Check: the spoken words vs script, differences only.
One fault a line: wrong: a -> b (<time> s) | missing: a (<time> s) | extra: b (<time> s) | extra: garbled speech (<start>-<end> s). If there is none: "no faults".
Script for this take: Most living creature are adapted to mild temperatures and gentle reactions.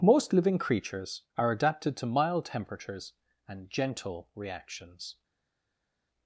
wrong: creature -> creatures (0.6 s)